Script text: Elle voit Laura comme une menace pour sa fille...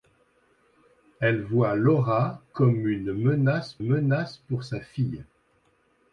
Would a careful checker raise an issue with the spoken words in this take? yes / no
yes